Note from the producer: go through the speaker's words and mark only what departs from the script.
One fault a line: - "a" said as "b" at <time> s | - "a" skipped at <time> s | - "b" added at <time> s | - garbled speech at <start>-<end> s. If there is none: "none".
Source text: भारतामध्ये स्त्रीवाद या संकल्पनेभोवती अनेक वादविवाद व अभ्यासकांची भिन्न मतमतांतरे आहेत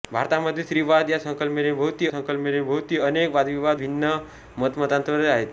- "संकल्पनेभोवती" added at 2.1 s
- "व अभ्यासकांची" skipped at 3.8 s